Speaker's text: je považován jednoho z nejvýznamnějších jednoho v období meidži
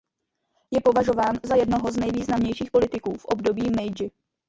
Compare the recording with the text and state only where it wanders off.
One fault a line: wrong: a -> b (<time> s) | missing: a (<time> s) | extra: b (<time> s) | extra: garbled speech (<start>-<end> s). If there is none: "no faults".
extra: za (1.4 s)
wrong: jednoho -> politiků (2.7 s)